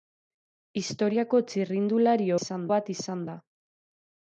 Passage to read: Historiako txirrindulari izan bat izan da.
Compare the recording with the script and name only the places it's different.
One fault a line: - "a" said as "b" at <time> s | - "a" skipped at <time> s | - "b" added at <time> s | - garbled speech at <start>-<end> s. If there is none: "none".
none